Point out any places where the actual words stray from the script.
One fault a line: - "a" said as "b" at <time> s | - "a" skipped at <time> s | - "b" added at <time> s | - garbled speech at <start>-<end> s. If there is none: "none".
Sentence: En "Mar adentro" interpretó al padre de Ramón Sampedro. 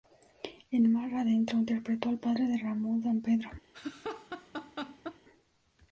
none